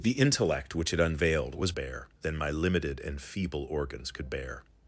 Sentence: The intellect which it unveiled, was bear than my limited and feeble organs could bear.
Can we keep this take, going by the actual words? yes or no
yes